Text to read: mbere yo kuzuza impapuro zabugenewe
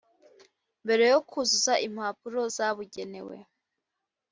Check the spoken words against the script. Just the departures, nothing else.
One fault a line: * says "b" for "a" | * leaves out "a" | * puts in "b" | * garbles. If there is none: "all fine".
all fine